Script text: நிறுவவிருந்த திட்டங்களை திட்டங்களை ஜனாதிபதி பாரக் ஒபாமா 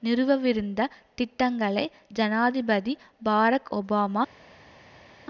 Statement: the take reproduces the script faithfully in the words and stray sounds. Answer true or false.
false